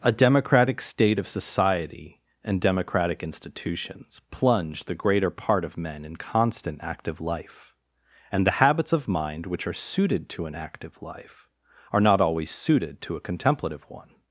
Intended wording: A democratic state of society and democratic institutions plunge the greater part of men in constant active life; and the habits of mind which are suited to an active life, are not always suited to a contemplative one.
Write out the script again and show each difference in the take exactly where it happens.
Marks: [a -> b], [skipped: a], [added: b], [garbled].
A democratic state of society and democratic institutions plunge the greater part of men in constant active life; and the habits of mind which are suited to an active life, are not always suited to a contemplative one.